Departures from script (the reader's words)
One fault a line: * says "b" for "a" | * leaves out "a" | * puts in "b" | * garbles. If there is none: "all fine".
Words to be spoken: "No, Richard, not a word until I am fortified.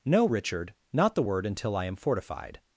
* says "the" for "a"